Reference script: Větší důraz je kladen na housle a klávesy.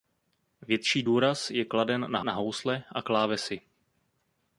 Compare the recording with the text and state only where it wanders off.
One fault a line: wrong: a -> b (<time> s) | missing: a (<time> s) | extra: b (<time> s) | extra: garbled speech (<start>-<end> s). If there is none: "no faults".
extra: na (2.2 s)